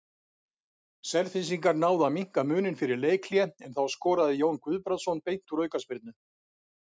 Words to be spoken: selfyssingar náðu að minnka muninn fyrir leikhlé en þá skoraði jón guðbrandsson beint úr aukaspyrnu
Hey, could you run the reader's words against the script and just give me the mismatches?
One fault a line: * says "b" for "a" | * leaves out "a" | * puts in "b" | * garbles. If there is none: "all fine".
all fine